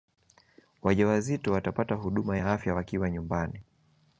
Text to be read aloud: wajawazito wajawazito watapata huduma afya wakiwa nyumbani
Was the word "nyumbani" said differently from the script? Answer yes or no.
no